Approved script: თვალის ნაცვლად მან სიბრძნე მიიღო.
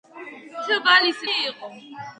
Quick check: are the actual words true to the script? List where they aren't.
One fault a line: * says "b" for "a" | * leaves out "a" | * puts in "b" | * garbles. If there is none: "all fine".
* leaves out "ნაცვლად მან სიბრძნე"